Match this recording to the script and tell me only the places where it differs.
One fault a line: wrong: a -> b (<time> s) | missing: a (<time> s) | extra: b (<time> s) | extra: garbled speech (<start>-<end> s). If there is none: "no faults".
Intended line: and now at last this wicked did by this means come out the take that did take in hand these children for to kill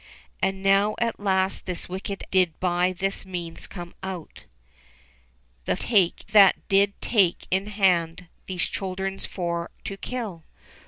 no faults